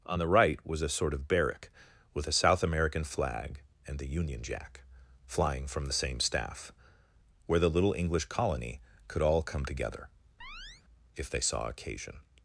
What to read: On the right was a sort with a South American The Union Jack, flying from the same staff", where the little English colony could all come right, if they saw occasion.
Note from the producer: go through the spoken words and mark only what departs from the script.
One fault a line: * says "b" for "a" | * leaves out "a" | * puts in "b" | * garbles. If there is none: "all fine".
* puts in "of barrack"
* puts in "Flag and"
* says "together" for "right"